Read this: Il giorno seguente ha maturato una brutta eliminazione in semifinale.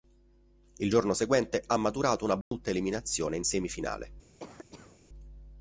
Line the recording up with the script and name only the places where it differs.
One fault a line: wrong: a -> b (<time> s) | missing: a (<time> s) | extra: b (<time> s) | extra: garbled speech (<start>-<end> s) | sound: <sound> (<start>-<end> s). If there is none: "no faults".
sound: dropout (2.4-2.5 s)
sound: cough (4.4-5.0 s)